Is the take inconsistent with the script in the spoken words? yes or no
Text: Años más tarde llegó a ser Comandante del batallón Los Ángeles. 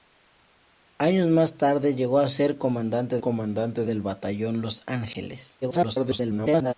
yes